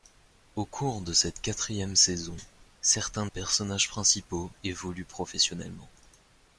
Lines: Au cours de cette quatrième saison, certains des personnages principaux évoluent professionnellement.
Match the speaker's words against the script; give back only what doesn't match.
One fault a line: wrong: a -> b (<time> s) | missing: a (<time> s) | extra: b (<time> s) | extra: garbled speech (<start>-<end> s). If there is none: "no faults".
missing: des (3.3 s)